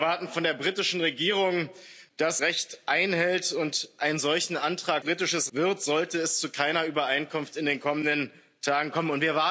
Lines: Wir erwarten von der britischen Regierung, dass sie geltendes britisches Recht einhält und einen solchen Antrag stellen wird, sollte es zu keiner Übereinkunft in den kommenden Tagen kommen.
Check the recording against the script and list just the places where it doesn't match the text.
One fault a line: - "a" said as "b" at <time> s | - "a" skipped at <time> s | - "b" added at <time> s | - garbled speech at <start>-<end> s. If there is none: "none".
- "sie geltendes britisches" skipped at 2.4 s
- "stellen" said as "britisches" at 5.0 s